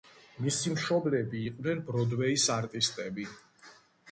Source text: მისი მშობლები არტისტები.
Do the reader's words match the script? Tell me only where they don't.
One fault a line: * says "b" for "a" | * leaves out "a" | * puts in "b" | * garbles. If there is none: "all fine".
* puts in "იყვნენ ბროდვეის"